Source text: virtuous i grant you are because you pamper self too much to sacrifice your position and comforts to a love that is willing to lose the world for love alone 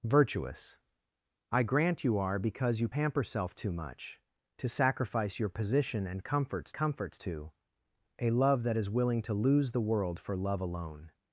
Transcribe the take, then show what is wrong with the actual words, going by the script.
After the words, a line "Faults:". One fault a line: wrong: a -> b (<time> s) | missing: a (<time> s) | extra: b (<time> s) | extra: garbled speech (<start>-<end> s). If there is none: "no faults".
virtuous i grant you are because you pamper self too much to sacrifice your position and comforts comforts to a love that is willing to lose the world for love alone
Faults:
extra: comforts (6.7 s)